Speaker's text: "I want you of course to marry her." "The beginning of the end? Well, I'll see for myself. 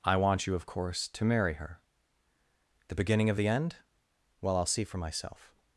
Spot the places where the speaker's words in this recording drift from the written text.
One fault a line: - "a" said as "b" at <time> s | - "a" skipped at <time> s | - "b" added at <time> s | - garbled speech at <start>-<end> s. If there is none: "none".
none